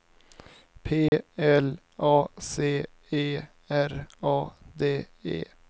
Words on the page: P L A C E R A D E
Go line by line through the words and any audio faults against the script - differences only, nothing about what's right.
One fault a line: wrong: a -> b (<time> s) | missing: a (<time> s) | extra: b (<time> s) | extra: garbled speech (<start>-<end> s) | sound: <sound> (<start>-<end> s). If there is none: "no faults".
sound: dropout (1.1-1.1 s)